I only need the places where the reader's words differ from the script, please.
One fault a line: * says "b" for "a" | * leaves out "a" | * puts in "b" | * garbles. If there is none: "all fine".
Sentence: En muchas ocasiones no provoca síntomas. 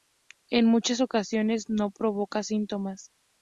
all fine